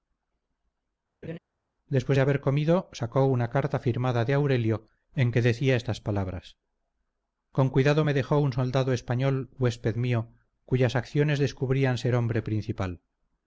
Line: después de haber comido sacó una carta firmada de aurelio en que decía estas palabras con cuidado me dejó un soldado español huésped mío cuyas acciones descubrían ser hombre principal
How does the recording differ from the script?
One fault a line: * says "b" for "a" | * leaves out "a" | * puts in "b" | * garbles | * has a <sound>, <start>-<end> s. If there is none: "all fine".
* has a laugh, 1.2-1.4 s